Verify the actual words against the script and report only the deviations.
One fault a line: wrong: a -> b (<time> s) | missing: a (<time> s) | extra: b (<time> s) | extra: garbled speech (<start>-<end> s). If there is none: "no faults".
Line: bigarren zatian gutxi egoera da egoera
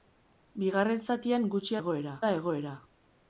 no faults